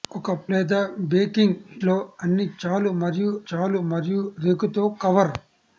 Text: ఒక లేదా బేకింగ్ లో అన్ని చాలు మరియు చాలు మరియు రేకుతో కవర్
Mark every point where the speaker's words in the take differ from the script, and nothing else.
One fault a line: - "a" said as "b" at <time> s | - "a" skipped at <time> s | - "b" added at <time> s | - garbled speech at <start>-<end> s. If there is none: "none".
none